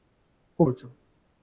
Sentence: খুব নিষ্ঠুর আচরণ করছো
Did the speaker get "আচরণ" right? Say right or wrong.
wrong